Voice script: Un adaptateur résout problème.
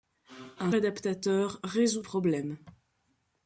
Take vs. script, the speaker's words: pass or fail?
pass